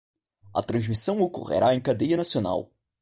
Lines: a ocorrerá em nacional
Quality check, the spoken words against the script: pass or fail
fail